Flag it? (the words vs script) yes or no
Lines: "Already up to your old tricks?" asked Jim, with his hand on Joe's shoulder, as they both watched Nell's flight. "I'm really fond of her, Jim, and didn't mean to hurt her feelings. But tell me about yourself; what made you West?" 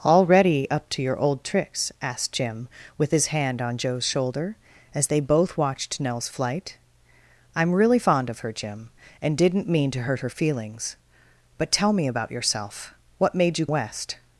no